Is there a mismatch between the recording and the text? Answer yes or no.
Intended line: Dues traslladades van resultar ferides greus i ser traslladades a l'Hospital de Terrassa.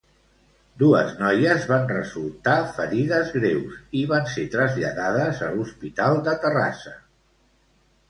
yes